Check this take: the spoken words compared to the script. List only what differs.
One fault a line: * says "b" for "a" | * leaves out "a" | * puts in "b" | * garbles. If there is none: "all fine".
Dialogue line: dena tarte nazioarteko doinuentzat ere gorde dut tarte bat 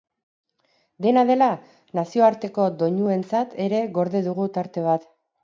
* says "dela" for "tarte"
* says "dugu" for "dut"